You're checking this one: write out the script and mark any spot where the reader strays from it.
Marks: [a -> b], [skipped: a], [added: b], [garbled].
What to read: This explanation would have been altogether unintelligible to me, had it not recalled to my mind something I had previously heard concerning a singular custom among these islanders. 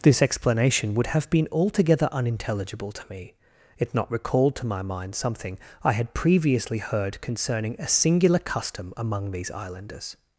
This explanation would have been altogether unintelligible to me, [skipped: had] it not recalled to my mind something I had previously heard concerning a singular custom among these islanders.